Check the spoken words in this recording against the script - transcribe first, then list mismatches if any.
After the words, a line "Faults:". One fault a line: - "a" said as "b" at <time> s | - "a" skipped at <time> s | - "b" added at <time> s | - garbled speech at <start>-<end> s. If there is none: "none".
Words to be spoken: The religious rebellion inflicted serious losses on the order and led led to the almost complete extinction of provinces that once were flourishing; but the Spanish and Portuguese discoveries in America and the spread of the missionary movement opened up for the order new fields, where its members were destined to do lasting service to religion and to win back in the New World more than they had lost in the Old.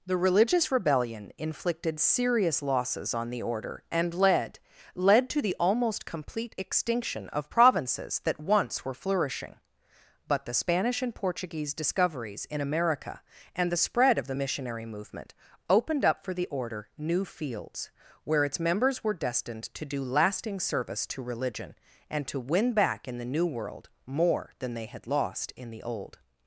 The religious rebellion inflicted serious losses on the order and led led to the almost complete extinction of provinces that once were flourishing; but the Spanish and Portuguese discoveries in America and the spread of the missionary movement opened up for the order new fields, where its members were destined to do lasting service to religion and to win back in the New World more than they had lost in the Old.
Faults:
none